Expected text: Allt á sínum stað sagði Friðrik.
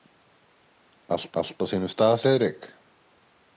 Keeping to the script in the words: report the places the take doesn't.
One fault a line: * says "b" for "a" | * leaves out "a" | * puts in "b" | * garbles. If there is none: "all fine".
* puts in "allt"
* leaves out "sagði"